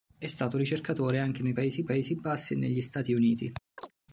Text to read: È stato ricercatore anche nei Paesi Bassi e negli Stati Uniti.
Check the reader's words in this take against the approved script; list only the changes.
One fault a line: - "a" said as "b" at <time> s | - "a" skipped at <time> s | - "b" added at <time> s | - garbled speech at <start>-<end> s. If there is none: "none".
- "Paesi" added at 1.8 s